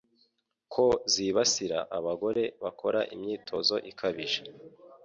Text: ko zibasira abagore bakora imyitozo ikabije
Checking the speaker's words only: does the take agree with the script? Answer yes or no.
yes